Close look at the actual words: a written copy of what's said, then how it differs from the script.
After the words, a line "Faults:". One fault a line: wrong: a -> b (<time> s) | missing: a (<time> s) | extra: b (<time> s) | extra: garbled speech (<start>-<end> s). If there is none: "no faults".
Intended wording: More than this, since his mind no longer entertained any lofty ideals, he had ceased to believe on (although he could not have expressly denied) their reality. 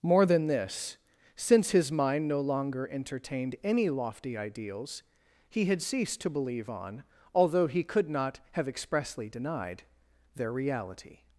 More than this, since his mind no longer entertained any lofty ideals, he had ceased to believe on (although he could not have expressly denied) their reality.
Faults:
no faults